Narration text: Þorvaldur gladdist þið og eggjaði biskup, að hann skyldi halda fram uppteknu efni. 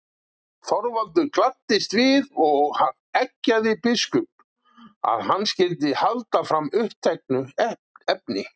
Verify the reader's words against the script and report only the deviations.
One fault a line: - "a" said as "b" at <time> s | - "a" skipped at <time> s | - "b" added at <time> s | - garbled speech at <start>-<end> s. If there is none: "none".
- "þið" said as "við" at 2.0 s